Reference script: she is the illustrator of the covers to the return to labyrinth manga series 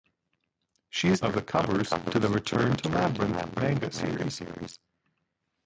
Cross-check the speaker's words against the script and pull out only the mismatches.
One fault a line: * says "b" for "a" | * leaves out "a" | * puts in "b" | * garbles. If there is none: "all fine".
* leaves out "the illustrator"